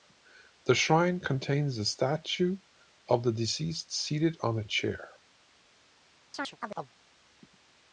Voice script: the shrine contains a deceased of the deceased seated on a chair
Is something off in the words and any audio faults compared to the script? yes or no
yes